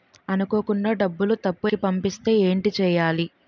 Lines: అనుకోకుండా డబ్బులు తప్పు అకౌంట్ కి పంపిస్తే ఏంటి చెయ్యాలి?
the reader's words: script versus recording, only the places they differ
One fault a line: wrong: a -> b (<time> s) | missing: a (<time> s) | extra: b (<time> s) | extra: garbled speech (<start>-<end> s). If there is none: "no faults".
missing: అకౌంట్ (1.7 s)